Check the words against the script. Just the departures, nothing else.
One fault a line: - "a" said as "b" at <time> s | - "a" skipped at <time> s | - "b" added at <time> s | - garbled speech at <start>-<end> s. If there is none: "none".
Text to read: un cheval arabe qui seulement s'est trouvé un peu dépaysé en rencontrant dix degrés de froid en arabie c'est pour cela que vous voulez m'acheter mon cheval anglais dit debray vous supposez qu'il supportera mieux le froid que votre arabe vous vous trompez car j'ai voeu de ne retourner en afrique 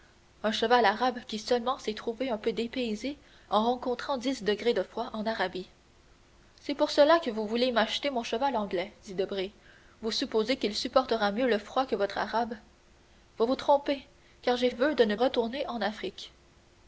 none